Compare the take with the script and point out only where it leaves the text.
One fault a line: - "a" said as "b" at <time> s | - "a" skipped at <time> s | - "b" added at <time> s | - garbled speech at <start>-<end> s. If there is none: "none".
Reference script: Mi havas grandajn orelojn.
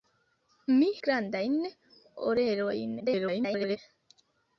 - "havas" skipped at 0.8 s
- garbled speech at 3.0-3.8 s